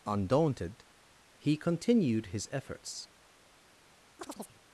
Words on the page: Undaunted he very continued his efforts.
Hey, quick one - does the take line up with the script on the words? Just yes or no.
no